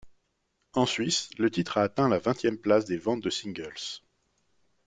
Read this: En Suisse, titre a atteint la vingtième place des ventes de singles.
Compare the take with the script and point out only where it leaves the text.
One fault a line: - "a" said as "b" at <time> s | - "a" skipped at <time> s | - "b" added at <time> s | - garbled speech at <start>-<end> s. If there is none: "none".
- "le" added at 1.4 s